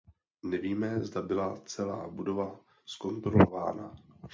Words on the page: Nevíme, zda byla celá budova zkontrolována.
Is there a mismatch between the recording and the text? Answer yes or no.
no